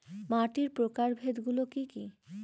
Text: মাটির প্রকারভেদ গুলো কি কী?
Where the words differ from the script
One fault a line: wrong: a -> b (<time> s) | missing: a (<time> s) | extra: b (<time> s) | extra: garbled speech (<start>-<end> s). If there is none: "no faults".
no faults